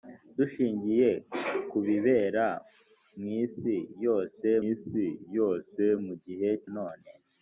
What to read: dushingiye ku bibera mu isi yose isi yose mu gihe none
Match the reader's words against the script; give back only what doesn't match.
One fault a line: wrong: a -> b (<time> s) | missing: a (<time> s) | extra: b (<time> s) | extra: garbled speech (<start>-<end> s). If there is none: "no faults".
no faults